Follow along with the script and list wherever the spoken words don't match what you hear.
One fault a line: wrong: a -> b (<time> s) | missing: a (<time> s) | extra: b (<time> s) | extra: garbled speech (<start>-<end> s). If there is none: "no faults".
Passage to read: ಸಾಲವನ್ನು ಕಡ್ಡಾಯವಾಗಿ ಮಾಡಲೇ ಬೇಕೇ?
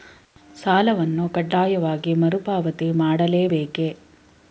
extra: ಮರುಪಾವತಿ (2.1 s)